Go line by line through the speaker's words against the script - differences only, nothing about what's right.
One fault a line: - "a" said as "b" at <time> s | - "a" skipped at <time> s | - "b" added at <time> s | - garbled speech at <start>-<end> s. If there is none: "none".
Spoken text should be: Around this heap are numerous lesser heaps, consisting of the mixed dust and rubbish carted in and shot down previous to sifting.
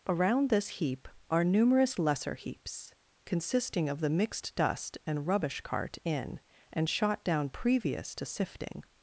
- "carted" said as "cart" at 5.6 s